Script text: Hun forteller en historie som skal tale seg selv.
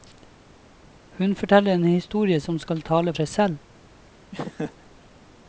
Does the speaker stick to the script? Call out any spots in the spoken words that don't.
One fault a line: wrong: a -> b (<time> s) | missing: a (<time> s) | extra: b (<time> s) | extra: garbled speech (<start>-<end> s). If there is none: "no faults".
no faults